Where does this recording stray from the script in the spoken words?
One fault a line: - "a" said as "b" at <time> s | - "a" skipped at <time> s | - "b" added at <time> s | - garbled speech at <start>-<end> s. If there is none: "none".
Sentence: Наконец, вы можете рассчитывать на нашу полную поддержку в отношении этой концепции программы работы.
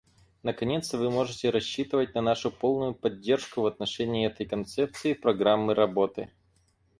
none